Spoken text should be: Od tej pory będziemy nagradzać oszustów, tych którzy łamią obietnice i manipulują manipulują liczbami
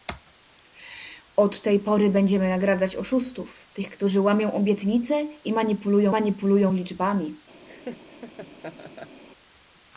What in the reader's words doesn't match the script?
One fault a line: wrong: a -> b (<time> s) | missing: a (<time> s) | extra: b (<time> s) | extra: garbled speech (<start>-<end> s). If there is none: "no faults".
no faults